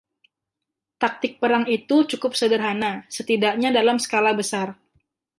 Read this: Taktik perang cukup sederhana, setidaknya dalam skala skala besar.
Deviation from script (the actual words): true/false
true